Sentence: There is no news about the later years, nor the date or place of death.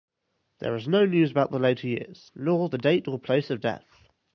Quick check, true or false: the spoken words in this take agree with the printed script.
true